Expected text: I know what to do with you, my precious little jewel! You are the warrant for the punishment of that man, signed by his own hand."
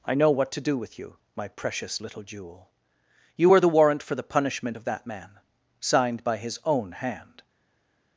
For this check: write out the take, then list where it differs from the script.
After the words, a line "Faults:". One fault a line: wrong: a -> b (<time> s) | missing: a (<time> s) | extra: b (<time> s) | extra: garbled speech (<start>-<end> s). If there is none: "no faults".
I know what to do with you, my precious little jewel! You were the warrant for the punishment of that man, signed by his own hand."
Faults:
wrong: are -> were (3.5 s)